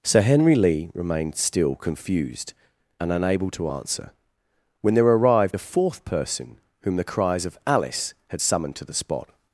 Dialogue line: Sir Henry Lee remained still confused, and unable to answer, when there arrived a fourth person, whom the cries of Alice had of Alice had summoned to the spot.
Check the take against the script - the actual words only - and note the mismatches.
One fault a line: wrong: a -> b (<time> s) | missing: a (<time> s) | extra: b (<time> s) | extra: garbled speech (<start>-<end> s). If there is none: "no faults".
missing: of Alice had (8.4 s)